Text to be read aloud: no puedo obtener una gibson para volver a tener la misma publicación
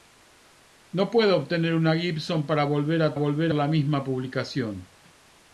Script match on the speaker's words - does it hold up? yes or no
no